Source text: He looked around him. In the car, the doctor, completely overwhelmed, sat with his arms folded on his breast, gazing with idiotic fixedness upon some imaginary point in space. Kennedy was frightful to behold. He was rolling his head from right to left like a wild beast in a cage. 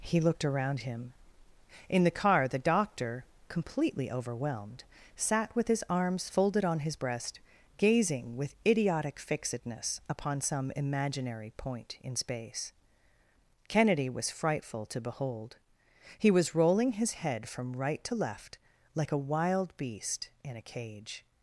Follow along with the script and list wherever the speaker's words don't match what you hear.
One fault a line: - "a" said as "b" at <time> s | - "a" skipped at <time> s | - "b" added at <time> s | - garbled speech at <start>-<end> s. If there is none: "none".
none